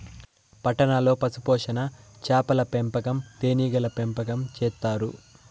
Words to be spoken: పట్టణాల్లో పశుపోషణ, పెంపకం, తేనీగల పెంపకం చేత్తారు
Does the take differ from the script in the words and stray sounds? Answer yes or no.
yes